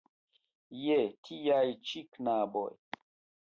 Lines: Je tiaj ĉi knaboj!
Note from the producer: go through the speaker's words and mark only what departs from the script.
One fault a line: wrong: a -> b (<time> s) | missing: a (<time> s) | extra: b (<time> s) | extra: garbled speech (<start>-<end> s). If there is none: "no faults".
no faults